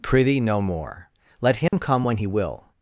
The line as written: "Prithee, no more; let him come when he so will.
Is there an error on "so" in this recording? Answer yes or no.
yes